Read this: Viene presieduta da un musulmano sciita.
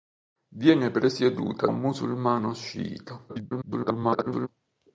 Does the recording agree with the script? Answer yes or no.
no